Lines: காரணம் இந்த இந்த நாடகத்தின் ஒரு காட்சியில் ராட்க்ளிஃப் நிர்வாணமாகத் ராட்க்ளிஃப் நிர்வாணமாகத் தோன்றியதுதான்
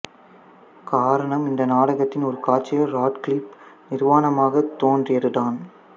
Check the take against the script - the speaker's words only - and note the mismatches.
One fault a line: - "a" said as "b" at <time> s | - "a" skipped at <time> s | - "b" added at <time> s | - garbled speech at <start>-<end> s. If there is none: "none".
- "இந்த" skipped at 1.6 s
- "ராட்க்ளிஃப் நிர்வாணமாகத்" skipped at 4.8 s